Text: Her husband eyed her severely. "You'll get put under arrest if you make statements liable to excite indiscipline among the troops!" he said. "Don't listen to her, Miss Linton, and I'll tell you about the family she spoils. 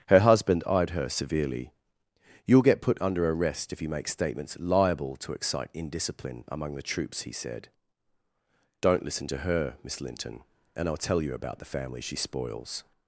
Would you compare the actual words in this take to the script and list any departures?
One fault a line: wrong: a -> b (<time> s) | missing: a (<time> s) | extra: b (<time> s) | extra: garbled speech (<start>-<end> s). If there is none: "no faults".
no faults